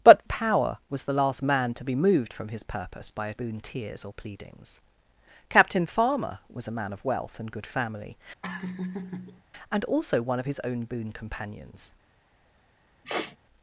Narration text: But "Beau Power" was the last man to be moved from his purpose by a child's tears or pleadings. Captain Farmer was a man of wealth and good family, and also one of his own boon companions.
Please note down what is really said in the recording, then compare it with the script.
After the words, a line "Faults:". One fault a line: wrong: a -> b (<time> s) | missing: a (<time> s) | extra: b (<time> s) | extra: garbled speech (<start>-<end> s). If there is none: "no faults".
But "Power" was the last man to be moved from his purpose by a boon tears or pleadings. Captain Farmer was a man of wealth and good family, and also one of his own boon companions.
Faults:
missing: Beau (0.2 s)
wrong: child's -> boon (3.3 s)